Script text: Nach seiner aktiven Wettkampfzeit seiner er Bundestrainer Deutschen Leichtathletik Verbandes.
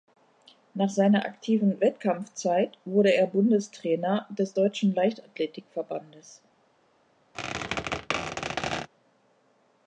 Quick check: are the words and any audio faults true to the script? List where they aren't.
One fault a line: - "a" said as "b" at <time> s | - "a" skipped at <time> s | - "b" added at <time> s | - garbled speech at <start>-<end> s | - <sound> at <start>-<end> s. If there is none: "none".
- "seiner" said as "wurde" at 2.9 s
- "des" added at 4.3 s
- squeak at 7.3-8.9 s